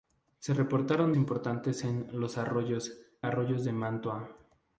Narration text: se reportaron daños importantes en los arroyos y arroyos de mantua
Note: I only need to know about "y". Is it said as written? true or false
false